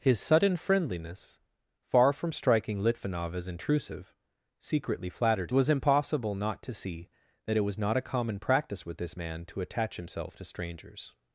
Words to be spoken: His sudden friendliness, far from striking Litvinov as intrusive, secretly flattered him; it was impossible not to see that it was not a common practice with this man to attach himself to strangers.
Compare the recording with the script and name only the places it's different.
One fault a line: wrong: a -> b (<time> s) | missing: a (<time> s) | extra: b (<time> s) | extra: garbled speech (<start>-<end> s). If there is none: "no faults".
missing: him it (5.5 s)